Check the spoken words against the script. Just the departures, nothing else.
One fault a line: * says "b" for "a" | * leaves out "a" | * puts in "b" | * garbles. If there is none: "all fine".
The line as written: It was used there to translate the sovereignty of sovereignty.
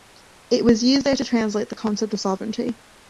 * says "concept" for "sovereignty"